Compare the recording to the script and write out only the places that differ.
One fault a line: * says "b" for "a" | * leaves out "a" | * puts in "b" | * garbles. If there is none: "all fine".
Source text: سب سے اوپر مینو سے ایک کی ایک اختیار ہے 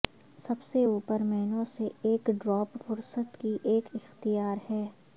* puts in "ڈراپ فہرست"